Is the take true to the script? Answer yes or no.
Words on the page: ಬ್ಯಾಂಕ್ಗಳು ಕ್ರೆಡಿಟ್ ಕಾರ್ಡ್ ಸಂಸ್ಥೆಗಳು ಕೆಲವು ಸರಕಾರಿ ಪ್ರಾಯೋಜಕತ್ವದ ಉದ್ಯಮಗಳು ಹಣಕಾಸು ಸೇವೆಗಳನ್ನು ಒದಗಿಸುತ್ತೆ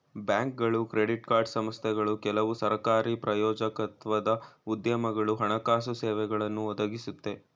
yes